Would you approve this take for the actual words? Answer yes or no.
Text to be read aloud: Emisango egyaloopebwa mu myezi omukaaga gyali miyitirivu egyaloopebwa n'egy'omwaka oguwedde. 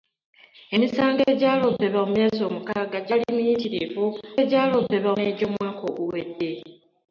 yes